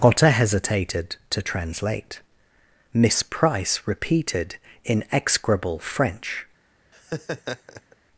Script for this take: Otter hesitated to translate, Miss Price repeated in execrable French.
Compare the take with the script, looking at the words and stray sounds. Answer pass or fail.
fail